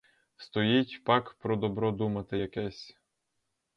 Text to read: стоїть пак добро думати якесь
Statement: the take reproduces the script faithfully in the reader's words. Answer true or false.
false